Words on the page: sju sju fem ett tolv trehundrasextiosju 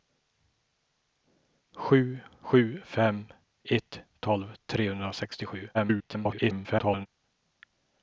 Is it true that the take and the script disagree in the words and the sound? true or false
true